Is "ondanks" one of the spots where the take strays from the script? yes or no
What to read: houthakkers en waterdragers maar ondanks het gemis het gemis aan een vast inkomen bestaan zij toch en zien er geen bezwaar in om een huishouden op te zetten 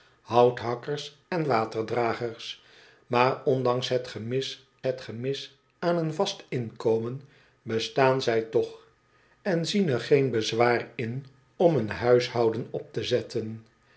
no